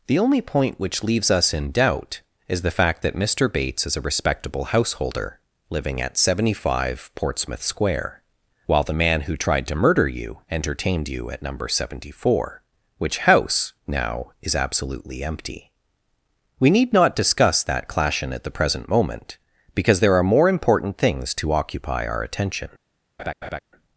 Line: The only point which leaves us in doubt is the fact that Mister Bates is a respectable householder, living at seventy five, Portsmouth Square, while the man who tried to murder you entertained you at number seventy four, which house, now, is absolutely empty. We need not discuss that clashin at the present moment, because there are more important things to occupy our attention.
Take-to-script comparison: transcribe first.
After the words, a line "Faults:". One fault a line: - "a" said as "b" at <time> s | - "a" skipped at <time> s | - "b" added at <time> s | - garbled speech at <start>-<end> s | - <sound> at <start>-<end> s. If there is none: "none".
The only point which leaves us in doubt is the fact that Mister Bates is a respectable householder, living at seventy five, Portsmouth Square, while the man who tried to murder you entertained you at number seventy four, which house, now, is absolutely empty. We need not discuss that clashin at the present moment, because there are more important things to occupy our attention.
Faults:
- laugh at 23.2-23.6 s